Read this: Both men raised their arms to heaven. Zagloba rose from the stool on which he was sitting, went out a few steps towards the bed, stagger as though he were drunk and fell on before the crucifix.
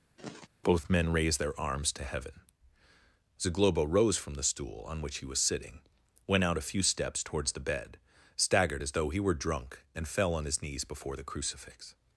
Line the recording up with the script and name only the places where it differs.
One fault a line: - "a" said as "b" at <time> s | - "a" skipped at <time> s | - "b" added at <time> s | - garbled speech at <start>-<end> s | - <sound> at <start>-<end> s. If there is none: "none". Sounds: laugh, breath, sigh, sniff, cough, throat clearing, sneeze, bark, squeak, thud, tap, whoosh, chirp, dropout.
- sigh at 0.2-0.5 s
- "stagger" said as "staggered" at 8.3 s
- "his knees" added at 10.4 s